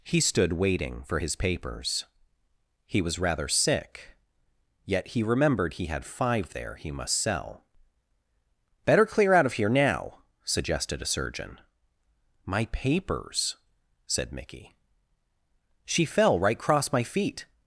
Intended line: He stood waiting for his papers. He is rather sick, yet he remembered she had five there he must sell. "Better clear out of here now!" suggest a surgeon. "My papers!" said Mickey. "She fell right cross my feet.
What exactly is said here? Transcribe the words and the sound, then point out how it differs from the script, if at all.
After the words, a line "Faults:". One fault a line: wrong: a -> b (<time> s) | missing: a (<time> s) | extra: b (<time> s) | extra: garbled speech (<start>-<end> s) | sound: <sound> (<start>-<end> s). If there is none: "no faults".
He stood waiting for his papers. He was rather sick, yet he remembered he had five there he must sell. "Better clear out of here now!" suggested a surgeon. "My papers!" said Mickey. "She fell right cross my feet.
Faults:
wrong: is -> was (3.0 s)
wrong: she -> he (5.7 s)
wrong: suggest -> suggested (10.4 s)